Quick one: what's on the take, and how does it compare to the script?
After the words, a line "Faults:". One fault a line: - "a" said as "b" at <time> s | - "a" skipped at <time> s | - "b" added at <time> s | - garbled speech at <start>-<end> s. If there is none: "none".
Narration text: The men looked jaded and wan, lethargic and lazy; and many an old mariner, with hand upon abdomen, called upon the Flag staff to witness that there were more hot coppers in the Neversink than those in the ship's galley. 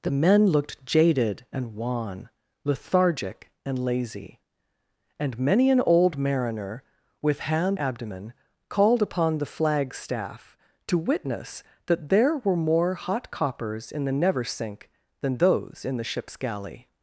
The men looked jaded and wan, lethargic and lazy; and many an old mariner, with hand abdomen, called upon the Flag staff to witness that there were more hot coppers in the Neversink than those in the ship's galley.
Faults:
- "upon" skipped at 7.8 s